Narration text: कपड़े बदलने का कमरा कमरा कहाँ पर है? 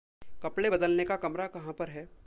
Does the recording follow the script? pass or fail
fail